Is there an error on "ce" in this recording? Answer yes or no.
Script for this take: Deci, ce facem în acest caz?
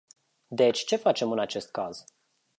no